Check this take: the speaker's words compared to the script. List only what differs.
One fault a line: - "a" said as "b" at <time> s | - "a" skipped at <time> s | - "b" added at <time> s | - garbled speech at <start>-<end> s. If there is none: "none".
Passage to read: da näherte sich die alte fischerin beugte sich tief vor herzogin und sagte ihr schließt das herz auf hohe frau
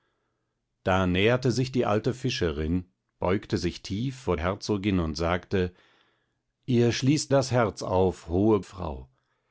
none